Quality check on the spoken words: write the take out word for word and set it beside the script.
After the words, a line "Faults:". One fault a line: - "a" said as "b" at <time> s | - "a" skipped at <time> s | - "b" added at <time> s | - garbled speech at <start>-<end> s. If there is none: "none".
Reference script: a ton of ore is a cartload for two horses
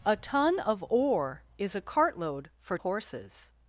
a ton of ore is a cartload for horses
Faults:
- "two" skipped at 2.8 s